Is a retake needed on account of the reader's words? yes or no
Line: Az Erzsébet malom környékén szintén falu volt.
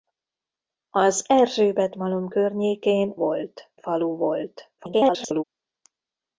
yes